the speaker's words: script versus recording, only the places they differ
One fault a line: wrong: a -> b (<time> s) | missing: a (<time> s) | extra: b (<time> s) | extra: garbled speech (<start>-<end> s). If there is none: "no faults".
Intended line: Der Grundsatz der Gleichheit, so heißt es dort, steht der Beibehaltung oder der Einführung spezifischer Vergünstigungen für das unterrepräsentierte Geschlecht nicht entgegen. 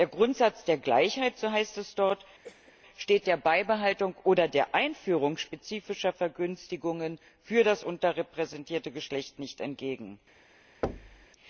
no faults